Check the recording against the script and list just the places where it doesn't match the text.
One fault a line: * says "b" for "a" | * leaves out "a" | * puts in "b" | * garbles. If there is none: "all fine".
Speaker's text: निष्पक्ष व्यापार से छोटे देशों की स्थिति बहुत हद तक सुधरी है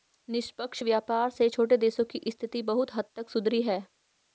all fine